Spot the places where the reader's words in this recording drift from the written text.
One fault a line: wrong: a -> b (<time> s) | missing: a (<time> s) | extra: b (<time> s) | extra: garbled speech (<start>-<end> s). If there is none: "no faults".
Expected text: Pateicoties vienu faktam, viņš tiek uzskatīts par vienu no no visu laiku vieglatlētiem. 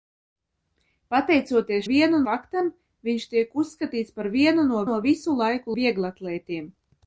no faults